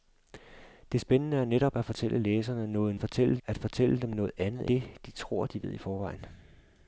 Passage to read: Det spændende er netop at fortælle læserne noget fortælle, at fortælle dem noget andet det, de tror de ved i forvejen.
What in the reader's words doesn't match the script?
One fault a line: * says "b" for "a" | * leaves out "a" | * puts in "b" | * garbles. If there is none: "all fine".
all fine